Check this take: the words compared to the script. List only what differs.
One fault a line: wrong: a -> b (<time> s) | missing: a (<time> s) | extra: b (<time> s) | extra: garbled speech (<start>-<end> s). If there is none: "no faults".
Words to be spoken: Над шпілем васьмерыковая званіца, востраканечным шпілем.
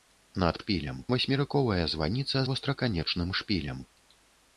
no faults